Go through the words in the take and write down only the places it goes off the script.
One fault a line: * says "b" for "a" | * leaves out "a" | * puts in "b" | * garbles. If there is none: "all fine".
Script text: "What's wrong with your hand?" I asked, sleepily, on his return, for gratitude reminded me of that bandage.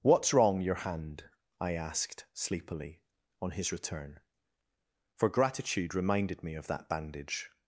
* leaves out "with"